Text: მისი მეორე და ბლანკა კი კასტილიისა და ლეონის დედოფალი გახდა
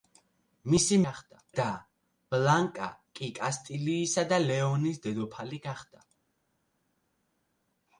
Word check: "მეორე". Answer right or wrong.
wrong